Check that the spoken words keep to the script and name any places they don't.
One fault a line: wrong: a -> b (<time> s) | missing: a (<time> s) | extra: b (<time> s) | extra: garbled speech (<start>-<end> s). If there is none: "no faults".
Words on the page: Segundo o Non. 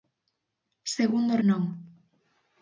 no faults